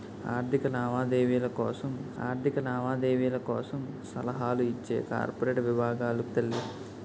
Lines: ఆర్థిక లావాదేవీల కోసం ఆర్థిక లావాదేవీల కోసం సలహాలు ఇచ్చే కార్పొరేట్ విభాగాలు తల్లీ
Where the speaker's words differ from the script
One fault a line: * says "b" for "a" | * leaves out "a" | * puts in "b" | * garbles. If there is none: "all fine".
all fine